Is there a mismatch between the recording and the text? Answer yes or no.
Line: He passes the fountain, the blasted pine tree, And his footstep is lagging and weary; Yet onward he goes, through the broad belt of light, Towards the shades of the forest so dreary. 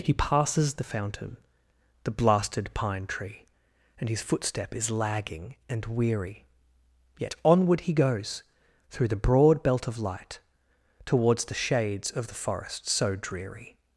no